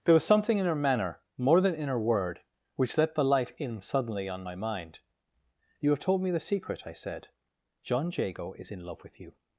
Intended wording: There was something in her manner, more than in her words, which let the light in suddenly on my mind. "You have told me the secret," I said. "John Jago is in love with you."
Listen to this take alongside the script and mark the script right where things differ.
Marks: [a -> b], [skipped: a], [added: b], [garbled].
There was something in her manner, more than in her [words, -> word] which let the light in suddenly on my mind. "You have told me the secret," I said. "John Jago is in love with you."